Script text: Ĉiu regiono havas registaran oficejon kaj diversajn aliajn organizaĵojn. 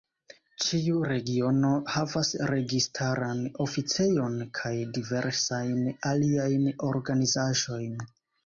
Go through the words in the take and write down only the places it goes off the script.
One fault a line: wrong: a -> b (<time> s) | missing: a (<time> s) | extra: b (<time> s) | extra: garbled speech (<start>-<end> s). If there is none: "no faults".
no faults